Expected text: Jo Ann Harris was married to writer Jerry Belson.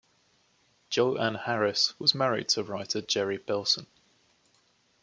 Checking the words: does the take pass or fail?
pass